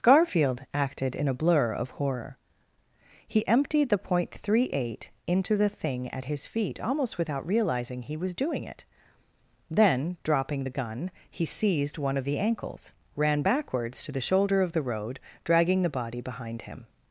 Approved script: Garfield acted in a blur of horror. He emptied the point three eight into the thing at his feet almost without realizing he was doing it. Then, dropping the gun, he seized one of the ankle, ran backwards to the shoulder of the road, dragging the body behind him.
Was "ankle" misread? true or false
true